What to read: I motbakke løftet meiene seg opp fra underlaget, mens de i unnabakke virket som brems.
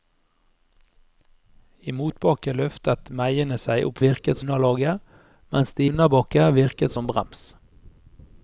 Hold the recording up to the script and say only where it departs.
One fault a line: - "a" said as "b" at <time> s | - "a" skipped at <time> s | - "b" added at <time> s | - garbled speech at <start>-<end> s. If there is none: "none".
- "fra" said as "virket" at 4.1 s
- "i" skipped at 5.9 s